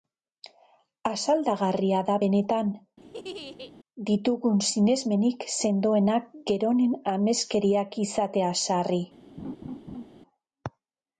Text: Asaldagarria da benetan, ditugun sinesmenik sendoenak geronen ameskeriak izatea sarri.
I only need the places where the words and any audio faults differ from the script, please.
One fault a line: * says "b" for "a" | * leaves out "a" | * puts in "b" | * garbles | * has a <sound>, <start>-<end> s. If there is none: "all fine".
* has a laugh, 3.0-3.7 s
* has a laugh, 9.4-10.1 s